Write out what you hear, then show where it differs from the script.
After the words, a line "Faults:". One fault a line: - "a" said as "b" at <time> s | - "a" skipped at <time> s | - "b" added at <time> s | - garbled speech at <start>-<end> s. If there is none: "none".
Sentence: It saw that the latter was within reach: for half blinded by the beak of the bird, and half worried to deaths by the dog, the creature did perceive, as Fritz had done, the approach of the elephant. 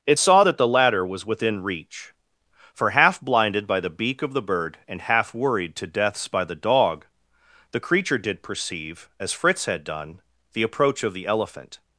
It saw that the latter was within reach: for half blinded by the beak of the bird, and half worried to deaths by the dog, the creature did perceive, as Fritz had done, the approach of the elephant.
Faults:
none